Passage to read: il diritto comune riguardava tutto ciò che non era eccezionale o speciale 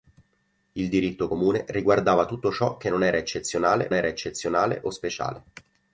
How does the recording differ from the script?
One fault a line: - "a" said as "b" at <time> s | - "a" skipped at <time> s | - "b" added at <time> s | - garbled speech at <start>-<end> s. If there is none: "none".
- "era eccezionale" added at 3.9 s